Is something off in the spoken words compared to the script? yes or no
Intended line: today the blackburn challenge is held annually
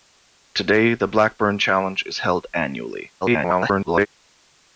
yes